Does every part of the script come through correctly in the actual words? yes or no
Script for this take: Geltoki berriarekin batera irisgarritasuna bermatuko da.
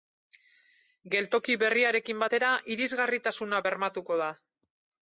yes